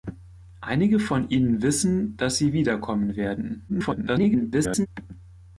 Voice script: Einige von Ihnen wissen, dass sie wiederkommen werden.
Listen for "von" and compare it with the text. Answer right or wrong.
right